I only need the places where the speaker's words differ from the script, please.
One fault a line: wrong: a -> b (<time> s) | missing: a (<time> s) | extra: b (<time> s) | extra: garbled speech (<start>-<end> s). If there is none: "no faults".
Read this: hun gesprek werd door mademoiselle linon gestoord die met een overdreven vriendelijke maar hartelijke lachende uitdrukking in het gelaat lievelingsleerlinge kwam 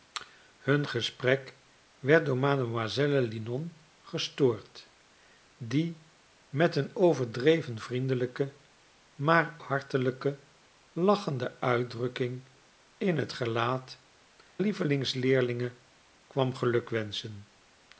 no faults